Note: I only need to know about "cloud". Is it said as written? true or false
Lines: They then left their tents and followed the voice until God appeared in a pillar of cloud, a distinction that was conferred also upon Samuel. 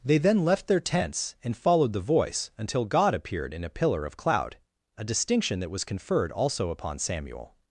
true